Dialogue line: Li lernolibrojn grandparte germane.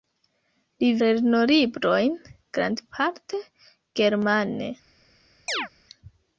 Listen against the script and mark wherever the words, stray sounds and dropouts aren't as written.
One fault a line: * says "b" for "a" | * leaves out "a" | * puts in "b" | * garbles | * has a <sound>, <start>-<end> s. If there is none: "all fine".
* has a chirp, 5.5-5.7 s